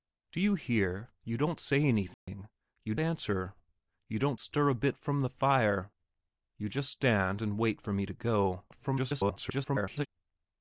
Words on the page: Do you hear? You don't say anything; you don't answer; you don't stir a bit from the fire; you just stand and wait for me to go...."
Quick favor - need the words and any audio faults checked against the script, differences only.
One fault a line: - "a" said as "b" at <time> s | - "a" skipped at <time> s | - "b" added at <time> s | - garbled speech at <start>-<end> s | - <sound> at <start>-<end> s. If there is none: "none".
- dropout at 2.1-2.3 s
- "don't" skipped at 3.0 s
- garbled speech at 8.7-10.1 s